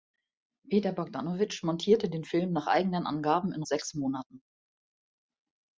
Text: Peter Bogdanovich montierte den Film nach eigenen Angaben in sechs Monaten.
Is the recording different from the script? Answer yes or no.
no